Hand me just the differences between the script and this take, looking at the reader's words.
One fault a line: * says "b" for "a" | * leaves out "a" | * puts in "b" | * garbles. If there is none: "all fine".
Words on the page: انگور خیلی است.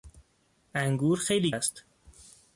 all fine